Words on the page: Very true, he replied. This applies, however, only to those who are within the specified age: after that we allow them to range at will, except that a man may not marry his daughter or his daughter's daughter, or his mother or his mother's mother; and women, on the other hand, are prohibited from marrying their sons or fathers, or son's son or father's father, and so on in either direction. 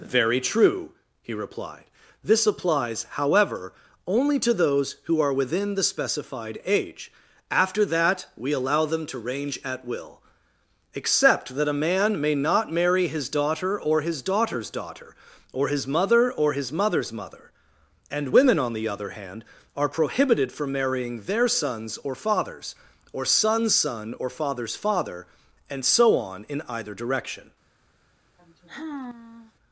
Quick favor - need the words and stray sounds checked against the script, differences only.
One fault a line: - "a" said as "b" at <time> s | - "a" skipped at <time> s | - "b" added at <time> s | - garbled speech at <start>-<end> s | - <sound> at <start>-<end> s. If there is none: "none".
- sigh at 28.4-29.5 s